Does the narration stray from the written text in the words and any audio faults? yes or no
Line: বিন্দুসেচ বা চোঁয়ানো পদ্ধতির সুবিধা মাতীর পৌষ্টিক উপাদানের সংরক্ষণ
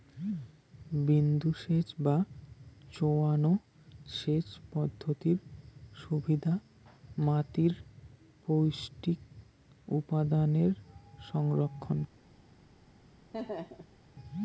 yes